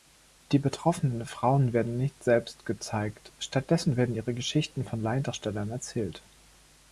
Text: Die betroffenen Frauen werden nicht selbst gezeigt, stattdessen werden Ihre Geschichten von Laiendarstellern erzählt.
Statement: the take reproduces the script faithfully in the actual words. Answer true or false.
true